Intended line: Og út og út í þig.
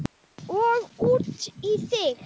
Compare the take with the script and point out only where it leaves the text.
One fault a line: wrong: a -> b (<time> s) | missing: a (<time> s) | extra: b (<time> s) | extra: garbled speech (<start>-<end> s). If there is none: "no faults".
missing: og út (1.5 s)